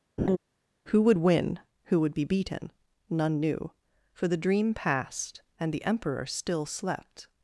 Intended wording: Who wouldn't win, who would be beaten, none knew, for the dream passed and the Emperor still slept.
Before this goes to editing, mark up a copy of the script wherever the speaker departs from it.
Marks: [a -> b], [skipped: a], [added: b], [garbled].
Who [wouldn't -> would] win, who would be beaten, none knew, for the dream passed and the Emperor still slept.